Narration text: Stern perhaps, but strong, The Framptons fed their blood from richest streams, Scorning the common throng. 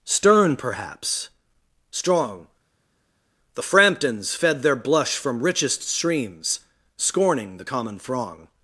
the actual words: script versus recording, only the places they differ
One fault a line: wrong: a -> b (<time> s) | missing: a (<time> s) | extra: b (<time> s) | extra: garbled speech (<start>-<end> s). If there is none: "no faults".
missing: but (1.3 s)
wrong: blood -> blush (4.7 s)